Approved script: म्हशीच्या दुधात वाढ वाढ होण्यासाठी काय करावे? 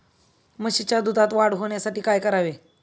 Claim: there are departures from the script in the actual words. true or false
true